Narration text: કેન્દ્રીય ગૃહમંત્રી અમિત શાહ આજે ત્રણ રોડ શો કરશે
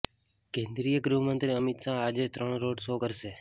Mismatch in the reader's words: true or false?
false